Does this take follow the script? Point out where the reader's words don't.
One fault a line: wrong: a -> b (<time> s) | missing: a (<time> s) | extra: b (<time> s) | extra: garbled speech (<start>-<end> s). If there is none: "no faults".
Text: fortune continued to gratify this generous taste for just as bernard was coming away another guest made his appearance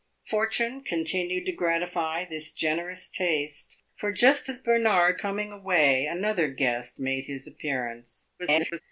missing: was (5.2 s)
extra: garbled speech (8.4-8.8 s)